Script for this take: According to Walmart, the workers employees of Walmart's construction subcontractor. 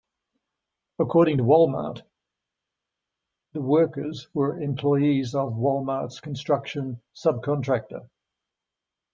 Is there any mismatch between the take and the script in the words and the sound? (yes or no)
yes